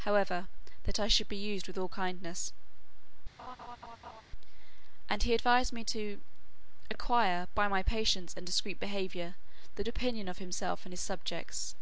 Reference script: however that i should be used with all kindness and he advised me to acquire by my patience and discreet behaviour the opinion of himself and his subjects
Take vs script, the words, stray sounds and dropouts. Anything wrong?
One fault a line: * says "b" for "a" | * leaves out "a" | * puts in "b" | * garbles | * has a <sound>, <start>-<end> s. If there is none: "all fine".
* has a laugh, 3.4-4.2 s